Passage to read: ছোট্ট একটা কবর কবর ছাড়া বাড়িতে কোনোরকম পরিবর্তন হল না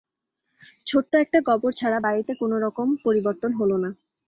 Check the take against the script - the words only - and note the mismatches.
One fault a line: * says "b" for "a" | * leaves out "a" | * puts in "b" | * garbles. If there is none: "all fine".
* leaves out "কবর"